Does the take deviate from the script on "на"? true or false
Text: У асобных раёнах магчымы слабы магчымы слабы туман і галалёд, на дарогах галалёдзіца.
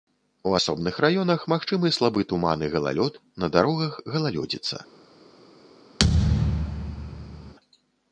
false